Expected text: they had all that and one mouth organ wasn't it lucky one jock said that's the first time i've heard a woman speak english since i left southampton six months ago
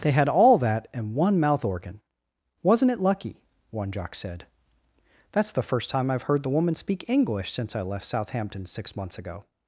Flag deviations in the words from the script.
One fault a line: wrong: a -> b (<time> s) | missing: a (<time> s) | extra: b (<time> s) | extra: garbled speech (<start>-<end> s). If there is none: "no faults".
wrong: a -> the (6.4 s)